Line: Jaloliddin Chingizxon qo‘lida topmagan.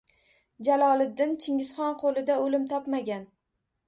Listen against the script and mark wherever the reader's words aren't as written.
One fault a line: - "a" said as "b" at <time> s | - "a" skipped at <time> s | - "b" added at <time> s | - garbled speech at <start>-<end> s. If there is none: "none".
- "o‘lim" added at 2.5 s